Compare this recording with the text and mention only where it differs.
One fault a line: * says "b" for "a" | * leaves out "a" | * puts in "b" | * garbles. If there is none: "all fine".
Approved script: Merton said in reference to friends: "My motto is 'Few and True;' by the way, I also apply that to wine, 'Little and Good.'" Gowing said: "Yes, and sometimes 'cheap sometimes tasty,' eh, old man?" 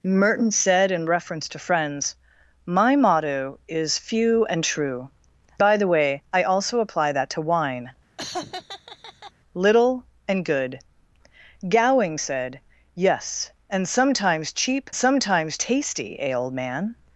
all fine